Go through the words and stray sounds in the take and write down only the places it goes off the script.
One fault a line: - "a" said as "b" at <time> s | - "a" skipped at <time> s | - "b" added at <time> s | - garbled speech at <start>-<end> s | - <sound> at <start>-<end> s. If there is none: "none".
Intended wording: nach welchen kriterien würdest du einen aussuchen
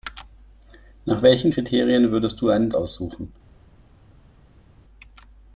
none